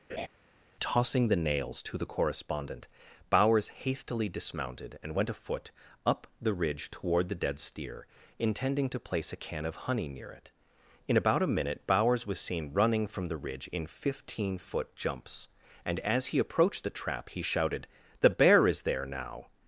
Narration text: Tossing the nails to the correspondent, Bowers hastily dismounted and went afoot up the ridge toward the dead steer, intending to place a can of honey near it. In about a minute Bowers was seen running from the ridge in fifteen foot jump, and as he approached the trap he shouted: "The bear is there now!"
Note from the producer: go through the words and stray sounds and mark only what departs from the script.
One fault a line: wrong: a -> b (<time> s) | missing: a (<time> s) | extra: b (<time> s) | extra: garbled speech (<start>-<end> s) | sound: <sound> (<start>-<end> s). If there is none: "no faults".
sound: laugh (0.1-0.3 s)
wrong: jump -> jumps (14.9 s)